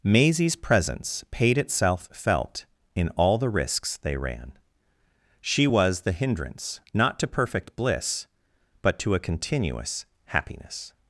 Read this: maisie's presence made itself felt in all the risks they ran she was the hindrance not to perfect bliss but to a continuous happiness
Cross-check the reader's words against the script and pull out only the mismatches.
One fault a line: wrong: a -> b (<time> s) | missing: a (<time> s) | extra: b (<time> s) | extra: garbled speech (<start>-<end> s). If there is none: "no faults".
wrong: made -> paid (1.3 s)